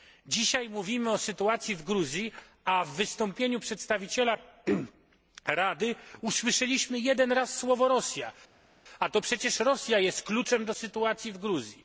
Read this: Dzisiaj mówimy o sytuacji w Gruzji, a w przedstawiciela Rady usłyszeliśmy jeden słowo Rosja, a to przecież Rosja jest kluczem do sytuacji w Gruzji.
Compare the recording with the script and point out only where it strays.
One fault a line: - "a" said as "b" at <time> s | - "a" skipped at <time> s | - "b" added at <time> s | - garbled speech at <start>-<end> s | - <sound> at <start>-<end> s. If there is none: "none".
- "wystąpieniu" added at 2.9 s
- "raz" added at 7.3 s